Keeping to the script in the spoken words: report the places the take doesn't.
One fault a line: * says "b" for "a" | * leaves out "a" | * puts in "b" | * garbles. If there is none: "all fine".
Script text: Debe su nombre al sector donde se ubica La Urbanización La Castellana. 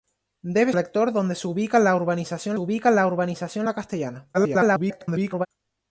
* leaves out "su nombre"
* puts in "ubica La Urbanización"
* garbles